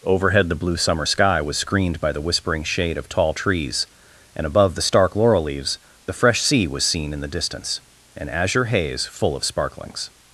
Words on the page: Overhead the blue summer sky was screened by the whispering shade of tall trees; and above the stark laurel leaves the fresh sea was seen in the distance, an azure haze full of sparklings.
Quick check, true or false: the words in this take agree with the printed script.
true